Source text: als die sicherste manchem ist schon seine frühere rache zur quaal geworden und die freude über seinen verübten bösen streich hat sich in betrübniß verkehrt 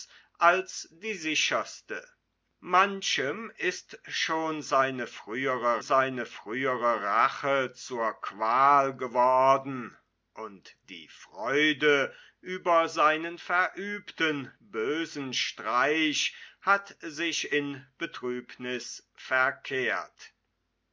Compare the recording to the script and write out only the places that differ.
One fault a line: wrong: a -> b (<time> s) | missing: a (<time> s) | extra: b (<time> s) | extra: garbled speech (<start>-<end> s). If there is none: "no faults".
extra: seine frühere (5.8 s)